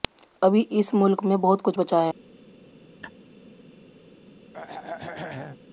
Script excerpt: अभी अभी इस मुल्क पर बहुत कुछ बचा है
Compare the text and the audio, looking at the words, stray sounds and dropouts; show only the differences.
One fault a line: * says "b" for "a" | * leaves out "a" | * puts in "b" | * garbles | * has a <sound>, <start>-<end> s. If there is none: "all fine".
* leaves out "अभी"
* says "में" for "पर"
* has a laugh, 3.0-3.1 s
* has a throat clearing, 4.5-5.6 s